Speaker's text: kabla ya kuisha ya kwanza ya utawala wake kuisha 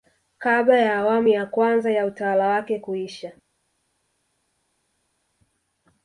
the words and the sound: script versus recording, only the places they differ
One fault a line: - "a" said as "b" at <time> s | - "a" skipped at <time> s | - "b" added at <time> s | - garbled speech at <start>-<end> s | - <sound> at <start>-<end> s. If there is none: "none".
- "kuisha" said as "awamu" at 1.0 s